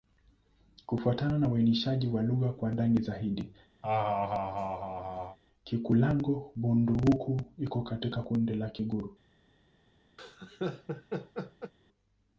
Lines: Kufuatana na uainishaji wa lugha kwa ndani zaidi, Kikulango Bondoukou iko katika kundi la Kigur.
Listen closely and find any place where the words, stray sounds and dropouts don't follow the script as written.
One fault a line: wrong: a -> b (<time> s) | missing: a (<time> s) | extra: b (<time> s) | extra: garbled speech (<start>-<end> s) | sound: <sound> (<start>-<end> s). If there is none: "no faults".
sound: laugh (3.8-5.4 s)
sound: laugh (10.2-11.7 s)